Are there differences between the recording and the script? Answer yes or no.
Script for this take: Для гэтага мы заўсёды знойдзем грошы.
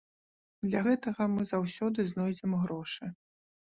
no